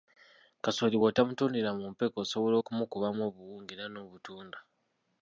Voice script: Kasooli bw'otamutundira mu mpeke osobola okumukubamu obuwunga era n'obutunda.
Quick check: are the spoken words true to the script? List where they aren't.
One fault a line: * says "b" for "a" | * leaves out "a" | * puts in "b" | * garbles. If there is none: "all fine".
all fine